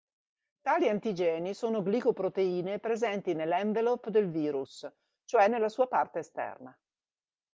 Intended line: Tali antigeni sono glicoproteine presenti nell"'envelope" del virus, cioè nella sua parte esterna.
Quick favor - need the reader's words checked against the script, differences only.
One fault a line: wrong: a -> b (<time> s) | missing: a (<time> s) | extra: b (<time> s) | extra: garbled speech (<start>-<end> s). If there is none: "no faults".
no faults